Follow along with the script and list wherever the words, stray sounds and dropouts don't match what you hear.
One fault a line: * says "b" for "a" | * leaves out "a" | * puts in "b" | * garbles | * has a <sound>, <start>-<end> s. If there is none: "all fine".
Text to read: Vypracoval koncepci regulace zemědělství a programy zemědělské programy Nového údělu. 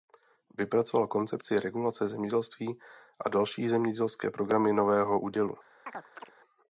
* says "další" for "programy"
* has a chirp, 5.9-6.3 s